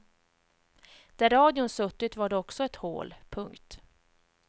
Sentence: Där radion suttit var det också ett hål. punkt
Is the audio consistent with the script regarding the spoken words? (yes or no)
yes